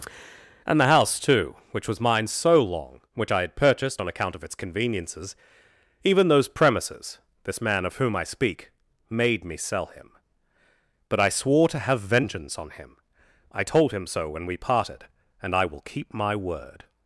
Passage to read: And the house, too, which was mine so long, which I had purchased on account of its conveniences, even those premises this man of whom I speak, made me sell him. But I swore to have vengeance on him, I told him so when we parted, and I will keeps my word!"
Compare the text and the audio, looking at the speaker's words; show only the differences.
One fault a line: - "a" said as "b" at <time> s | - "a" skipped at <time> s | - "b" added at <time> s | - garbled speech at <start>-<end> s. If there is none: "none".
- "keeps" said as "keep" at 15.8 s